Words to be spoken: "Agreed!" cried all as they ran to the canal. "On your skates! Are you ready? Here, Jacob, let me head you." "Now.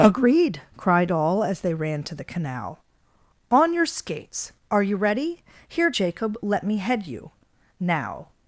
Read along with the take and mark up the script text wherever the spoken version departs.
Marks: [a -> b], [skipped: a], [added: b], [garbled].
"Agreed!" cried all as they ran to the canal. "On your skates! Are you ready? Here, Jacob, let me head you." "Now.